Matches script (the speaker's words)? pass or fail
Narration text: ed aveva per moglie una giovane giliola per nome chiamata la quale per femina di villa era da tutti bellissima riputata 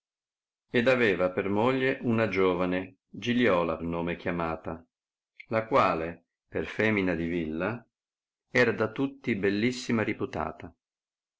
fail